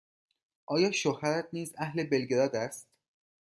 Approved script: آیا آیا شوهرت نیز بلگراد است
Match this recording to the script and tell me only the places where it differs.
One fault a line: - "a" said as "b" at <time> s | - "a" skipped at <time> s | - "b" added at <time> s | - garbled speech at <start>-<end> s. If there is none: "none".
- "آیا" skipped at 0.9 s
- "اهل" added at 1.8 s